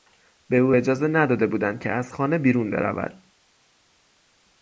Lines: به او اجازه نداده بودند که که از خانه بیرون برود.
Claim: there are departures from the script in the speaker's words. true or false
true